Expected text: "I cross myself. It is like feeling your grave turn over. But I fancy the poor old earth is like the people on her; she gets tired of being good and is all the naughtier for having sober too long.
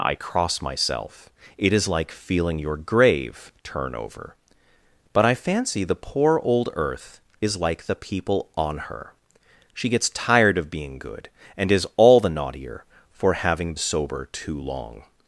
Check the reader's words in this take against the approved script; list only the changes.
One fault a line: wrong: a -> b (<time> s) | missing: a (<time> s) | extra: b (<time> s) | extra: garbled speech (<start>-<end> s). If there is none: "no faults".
no faults